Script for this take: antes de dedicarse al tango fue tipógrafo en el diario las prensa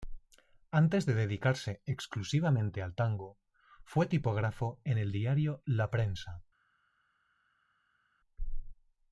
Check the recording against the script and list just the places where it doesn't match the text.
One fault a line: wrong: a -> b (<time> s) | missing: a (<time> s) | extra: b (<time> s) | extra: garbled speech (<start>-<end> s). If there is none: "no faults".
extra: exclusivamente (1.9 s)
wrong: las -> la (5.6 s)